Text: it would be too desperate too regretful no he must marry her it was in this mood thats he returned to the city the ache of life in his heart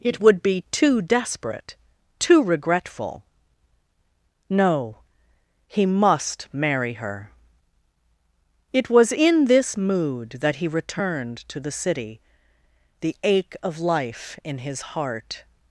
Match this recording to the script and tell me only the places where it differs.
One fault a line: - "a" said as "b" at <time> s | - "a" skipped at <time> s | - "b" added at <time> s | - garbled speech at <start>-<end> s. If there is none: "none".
- "thats" said as "that" at 10.4 s